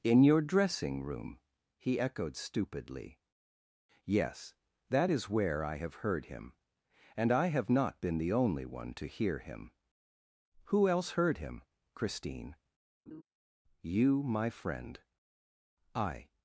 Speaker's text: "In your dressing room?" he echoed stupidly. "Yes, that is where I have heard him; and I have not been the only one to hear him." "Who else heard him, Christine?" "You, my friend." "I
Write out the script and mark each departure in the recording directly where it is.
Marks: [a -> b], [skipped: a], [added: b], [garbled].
"In your dressing room?" he echoed stupidly. "Yes, that is where I have heard him; and I have not been the only one to hear him." "Who else heard him, Christine?" "You, my friend." "I